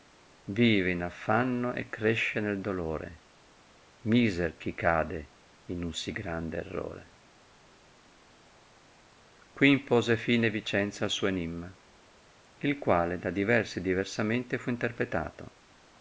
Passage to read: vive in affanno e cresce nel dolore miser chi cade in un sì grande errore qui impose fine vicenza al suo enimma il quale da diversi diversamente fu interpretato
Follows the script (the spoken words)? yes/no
yes